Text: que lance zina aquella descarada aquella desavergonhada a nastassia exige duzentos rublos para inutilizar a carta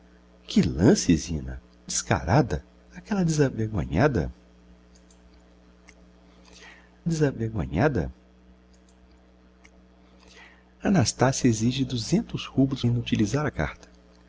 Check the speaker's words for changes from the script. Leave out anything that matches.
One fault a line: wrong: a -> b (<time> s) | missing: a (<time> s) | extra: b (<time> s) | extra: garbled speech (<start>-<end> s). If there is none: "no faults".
missing: aquella (1.6 s)
extra: desavergonhada (7.0 s)
missing: para (12.8 s)